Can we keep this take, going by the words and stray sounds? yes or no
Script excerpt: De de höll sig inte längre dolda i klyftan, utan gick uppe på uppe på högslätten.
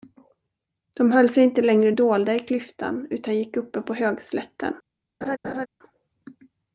no